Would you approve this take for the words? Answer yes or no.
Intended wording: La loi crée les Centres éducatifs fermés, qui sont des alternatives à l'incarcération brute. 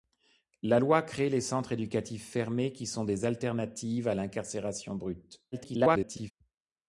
no